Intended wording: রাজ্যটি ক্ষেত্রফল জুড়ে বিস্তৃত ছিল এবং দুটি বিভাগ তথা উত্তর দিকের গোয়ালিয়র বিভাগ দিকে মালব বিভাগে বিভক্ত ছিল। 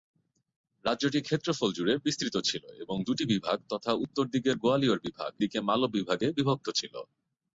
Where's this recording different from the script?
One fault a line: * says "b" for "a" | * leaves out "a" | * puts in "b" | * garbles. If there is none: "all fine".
all fine